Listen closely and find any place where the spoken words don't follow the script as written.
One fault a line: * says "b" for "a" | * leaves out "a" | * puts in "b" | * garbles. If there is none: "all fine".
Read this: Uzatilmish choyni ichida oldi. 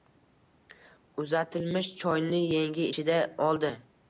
* puts in "yengi"